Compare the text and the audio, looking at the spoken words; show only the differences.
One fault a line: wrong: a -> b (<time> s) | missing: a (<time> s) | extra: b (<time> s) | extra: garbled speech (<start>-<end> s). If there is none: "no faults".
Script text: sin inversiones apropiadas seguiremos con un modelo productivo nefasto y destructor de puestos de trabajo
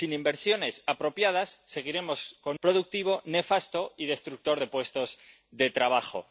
missing: un modelo (2.6 s)